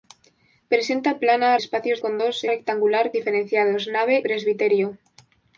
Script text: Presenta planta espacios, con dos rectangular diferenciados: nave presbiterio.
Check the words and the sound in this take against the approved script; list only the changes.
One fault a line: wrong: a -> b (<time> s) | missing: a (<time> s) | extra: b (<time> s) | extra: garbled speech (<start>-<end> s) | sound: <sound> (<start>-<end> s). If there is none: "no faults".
no faults